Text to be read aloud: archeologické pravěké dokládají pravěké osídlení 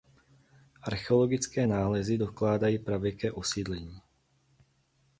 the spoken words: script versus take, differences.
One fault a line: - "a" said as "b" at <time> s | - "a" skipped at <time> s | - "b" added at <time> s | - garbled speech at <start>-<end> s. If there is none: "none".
- "pravěké" said as "nálezy" at 1.6 s